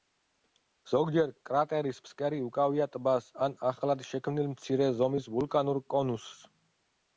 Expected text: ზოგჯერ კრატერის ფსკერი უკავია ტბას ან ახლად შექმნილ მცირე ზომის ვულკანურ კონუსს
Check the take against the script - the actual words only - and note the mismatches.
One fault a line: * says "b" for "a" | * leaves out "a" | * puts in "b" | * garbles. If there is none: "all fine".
all fine